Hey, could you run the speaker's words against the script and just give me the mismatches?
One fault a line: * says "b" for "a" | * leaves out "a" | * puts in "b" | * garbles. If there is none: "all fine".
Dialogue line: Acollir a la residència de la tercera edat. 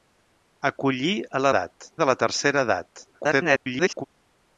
* says "edat" for "residència"
* garbles